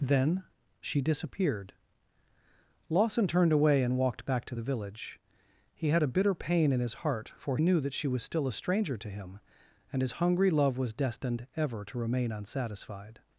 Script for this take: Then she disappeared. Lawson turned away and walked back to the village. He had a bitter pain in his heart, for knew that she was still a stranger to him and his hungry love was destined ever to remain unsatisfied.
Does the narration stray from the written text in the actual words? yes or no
no